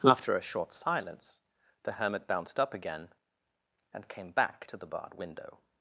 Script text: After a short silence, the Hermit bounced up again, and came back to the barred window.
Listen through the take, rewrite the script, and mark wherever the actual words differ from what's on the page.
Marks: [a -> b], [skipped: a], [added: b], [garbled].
After a short silence, the Hermit bounced up again, and came back to the barred window.